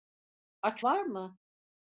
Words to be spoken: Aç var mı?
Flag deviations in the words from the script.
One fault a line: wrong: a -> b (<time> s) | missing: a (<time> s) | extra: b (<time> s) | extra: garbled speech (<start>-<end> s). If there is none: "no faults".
no faults